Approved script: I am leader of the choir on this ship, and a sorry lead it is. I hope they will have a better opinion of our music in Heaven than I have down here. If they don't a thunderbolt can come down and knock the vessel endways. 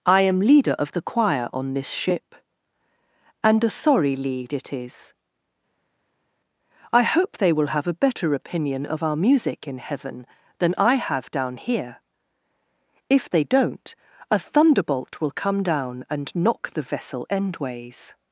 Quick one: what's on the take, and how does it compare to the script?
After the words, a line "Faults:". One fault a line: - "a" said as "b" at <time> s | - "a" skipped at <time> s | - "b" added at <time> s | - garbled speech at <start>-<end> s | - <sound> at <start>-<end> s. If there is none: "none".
I am leader of the choir on this ship, and a sorry lead it is. I hope they will have a better opinion of our music in Heaven than I have down here. If they don't a thunderbolt will come down and knock the vessel endways.
Faults:
- "can" said as "will" at 15.2 s